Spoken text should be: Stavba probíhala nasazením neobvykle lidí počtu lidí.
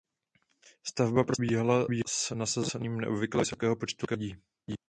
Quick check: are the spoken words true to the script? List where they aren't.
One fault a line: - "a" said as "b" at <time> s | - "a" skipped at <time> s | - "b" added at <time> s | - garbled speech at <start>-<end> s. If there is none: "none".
- "s" added at 2.1 s
- "lidí" said as "vysokého" at 3.4 s